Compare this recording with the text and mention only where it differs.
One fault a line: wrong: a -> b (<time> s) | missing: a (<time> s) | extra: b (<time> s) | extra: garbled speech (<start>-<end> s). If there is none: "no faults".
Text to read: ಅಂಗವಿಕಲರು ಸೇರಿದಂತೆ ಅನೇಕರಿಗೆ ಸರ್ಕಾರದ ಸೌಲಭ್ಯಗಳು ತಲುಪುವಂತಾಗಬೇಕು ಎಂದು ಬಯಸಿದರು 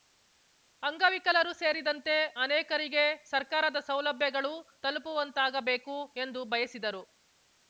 no faults